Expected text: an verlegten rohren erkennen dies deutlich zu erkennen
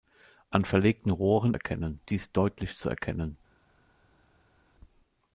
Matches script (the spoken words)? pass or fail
pass